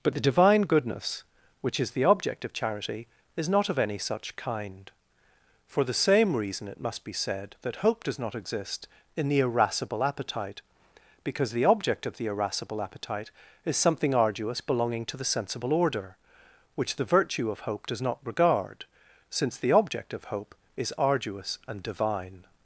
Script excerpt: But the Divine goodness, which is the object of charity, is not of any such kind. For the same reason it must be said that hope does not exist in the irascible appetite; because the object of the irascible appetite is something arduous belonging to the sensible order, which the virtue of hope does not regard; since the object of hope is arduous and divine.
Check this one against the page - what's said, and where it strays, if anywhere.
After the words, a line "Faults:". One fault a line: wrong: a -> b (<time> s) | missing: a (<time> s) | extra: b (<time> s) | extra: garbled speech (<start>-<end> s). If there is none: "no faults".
But the Divine goodness, which is the object of charity, is not of any such kind. For the same reason it must be said that hope does not exist in the irascible appetite; because the object of the irascible appetite is something arduous belonging to the sensible order, which the virtue of hope does not regard; since the object of hope is arduous and divine.
Faults:
no faults